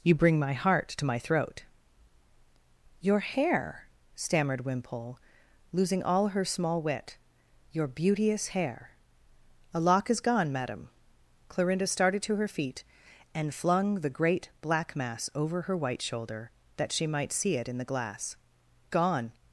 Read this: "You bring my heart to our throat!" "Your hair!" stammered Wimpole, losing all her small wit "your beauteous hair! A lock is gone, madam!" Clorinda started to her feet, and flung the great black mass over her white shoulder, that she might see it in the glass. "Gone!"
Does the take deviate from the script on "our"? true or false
true